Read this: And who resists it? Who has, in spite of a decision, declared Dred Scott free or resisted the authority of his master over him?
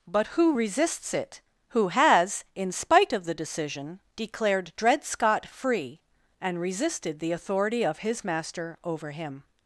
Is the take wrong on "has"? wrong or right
right